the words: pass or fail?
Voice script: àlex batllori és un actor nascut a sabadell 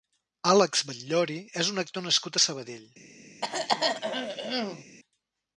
pass